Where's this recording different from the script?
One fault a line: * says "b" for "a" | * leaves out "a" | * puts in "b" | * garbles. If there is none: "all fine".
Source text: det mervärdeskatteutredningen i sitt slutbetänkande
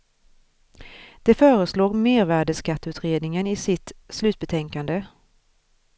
* puts in "föreslår"